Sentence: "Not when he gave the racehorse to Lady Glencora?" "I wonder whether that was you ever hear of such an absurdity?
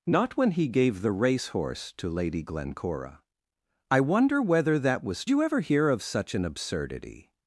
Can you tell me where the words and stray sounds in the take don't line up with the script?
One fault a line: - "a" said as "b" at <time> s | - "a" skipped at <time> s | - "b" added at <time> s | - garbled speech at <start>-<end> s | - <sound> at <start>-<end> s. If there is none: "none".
none